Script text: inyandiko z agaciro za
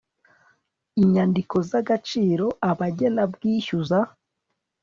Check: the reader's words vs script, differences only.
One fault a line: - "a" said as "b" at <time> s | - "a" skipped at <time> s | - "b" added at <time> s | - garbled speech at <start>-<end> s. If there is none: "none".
- "abagenabwishyu" added at 2.7 s